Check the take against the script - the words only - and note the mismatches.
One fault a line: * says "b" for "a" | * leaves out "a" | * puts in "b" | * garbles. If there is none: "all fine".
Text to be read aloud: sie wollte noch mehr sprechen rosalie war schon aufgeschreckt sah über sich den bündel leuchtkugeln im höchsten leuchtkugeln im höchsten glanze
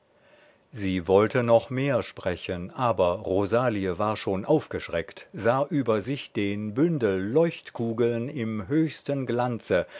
* puts in "aber"
* leaves out "leuchtkugeln im höchsten"